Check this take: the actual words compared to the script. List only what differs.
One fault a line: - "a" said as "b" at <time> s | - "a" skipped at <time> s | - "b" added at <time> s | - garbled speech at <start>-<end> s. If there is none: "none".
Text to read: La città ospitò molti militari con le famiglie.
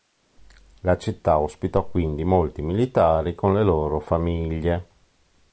- "quindi" added at 1.9 s
- "loro" added at 3.6 s